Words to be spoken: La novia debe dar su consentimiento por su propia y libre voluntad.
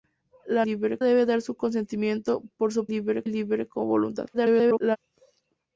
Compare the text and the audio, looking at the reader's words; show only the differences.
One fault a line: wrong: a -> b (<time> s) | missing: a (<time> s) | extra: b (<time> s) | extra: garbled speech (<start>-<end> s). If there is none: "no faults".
wrong: novia -> libre (0.6 s)
wrong: propia -> libre (2.9 s)
extra: garbled speech (4.3-5.0 s)